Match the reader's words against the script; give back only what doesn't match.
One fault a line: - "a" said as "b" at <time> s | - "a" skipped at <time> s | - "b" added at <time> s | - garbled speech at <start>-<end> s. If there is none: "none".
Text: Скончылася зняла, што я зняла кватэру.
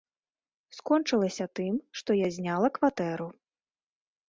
- "зняла" said as "тым" at 1.6 s